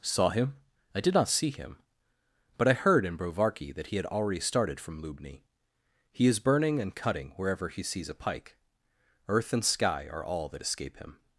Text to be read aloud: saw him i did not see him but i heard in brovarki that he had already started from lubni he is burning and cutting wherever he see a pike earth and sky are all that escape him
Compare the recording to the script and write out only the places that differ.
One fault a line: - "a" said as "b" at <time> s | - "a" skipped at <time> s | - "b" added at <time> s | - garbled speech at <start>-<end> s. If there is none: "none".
- "see" said as "sees" at 7.8 s